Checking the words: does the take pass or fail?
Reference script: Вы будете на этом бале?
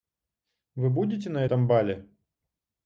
pass